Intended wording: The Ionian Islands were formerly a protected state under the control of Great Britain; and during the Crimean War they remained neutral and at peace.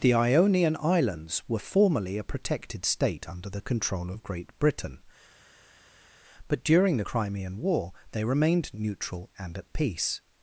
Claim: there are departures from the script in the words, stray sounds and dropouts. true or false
true